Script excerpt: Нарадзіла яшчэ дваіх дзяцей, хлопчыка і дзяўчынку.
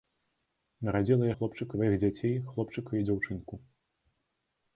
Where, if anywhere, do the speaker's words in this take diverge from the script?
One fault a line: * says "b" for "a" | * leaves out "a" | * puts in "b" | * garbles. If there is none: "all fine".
* says "хлопчыка" for "яшчэ"